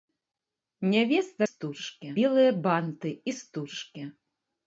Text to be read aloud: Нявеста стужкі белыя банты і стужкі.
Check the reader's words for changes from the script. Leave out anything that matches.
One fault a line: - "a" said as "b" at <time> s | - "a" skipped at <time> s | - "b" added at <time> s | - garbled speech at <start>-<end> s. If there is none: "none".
none